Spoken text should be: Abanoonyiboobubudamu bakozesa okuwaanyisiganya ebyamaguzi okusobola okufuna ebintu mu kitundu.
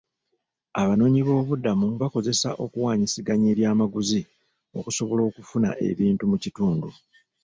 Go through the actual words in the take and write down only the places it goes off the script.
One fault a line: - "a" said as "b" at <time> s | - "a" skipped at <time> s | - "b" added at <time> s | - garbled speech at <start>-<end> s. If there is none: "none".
none